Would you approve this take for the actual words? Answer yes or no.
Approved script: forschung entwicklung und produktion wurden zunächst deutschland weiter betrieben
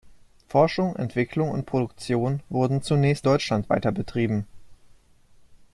yes